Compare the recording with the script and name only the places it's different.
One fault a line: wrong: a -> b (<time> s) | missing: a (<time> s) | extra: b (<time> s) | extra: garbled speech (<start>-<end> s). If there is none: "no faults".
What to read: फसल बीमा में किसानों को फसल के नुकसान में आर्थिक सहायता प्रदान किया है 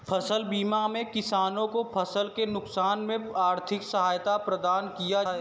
no faults